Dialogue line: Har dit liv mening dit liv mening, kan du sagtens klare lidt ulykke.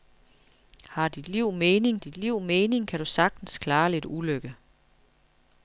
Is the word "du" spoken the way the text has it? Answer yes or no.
yes